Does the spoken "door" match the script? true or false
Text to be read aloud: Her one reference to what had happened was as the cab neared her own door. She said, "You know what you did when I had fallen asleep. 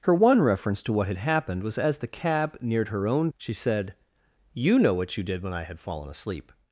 false